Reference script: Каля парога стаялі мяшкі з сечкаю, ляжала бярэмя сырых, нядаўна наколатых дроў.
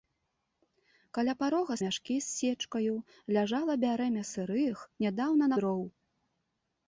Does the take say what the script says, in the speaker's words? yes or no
no